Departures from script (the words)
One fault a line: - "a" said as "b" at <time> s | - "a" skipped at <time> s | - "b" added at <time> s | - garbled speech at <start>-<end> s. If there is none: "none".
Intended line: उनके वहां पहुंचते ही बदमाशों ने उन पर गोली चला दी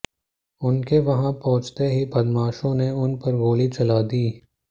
none